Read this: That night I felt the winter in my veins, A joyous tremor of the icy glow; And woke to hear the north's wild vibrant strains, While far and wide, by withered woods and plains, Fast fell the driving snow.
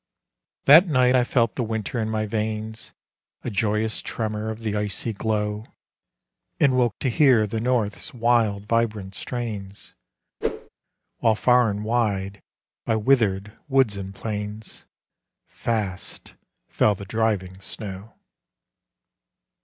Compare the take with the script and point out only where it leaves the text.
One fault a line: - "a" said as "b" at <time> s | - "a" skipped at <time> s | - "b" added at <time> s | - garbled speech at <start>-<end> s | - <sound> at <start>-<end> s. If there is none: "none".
- whoosh at 10.4-10.7 s